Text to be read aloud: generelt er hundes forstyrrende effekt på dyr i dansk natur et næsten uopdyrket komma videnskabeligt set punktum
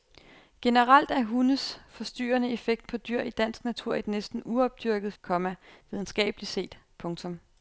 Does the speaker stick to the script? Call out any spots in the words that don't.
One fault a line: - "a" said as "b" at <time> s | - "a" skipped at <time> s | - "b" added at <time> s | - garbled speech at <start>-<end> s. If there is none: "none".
none